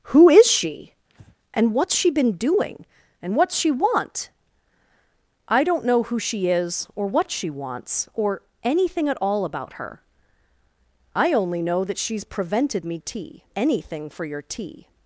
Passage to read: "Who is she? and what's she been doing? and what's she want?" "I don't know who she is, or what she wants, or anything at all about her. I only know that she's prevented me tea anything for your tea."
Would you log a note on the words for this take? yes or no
no